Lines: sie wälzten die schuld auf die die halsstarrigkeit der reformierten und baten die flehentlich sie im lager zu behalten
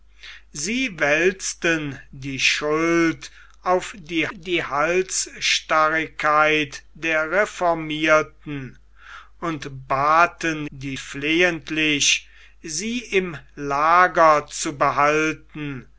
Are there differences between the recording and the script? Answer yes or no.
no